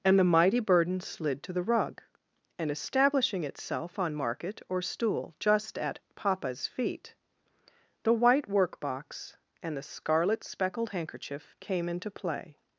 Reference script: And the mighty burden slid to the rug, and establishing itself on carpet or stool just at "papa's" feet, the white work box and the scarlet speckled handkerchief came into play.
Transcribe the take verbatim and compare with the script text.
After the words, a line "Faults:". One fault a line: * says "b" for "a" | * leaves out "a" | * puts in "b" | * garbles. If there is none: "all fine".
And the mighty burden slid to the rug, and establishing itself on market or stool just at "papa's" feet, the white work box and the scarlet speckled handkerchief came into play.
Faults:
* says "market" for "carpet"